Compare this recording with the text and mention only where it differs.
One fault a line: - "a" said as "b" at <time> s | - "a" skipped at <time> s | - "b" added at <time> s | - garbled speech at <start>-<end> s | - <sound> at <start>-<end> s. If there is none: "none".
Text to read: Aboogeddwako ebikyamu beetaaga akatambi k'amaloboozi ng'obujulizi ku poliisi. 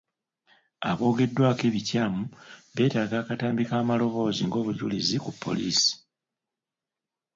none